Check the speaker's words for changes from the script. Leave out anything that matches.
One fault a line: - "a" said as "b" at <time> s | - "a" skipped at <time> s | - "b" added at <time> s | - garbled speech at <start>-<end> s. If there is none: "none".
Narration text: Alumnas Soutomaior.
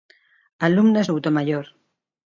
none